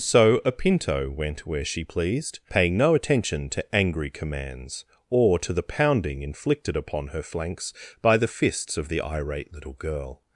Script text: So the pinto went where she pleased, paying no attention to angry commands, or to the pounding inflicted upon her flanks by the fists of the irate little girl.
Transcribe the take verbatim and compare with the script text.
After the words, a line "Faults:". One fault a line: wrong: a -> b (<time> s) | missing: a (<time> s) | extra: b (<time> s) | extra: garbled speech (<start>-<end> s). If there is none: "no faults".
So a pinto went where she pleased, paying no attention to angry commands, or to the pounding inflicted upon her flanks by the fists of the irate little girl.
Faults:
wrong: the -> a (0.4 s)